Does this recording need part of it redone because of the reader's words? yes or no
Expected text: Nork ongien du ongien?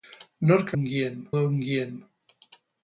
no